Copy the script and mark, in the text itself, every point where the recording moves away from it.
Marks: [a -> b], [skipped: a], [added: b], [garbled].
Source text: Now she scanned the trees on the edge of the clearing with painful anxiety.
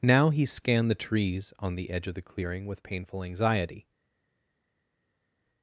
Now [she -> he] scanned the trees on the edge of the clearing with painful anxiety.